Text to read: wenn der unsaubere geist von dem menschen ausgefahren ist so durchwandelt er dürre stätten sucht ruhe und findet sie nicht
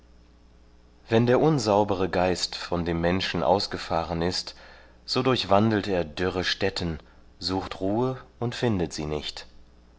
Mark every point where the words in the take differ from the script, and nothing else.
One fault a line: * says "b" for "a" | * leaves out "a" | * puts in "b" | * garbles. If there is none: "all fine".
all fine